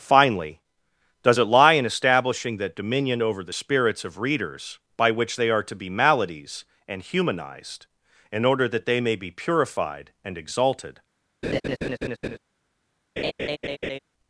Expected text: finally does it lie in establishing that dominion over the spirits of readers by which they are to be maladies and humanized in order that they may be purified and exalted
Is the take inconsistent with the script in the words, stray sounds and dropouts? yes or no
yes